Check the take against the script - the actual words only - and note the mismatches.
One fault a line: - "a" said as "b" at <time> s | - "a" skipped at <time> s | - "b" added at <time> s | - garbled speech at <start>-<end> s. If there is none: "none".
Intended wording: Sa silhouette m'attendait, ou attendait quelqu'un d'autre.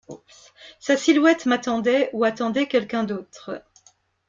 none